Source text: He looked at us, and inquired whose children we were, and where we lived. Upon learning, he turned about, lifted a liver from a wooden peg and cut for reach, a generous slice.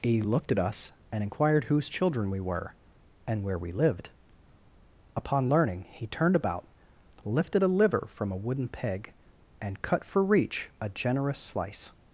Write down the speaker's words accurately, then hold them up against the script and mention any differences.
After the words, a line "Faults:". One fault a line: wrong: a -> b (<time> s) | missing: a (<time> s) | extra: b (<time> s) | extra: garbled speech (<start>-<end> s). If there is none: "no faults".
He looked at us, and inquired whose children we were, and where we lived. Upon learning, he turned about, lifted a liver from a wooden peg and cut for reach, a generous slice.
Faults:
no faults